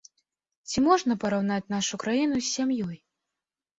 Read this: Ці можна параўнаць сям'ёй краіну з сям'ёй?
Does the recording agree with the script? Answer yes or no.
no